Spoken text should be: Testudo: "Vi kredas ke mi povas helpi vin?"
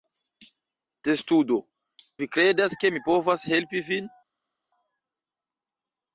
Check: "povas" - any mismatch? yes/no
no